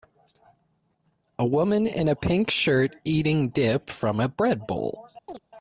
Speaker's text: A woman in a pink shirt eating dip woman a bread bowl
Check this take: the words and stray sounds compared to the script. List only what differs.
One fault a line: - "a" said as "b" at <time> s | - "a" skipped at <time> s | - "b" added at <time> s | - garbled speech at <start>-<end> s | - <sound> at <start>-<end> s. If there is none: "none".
- "woman" said as "from" at 3.9 s
- chirp at 5.3-5.4 s